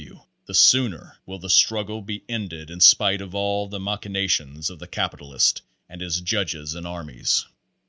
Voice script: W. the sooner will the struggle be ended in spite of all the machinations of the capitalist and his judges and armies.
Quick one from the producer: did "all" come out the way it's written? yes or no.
yes